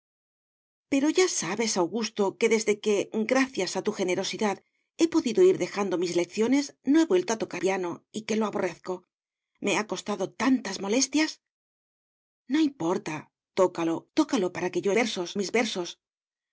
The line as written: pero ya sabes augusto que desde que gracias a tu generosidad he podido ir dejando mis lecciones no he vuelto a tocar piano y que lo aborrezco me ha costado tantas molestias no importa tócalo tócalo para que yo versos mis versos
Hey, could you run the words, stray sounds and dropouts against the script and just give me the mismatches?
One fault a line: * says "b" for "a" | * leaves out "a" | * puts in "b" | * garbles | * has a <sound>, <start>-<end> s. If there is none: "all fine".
all fine